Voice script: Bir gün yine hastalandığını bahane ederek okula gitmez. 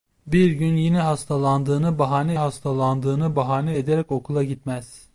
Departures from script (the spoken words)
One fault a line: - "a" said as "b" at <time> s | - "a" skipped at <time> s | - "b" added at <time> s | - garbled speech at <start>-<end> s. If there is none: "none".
- "hastalandığını bahane" added at 2.3 s